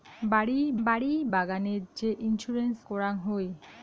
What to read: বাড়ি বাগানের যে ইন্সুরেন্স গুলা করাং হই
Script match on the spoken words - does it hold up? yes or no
no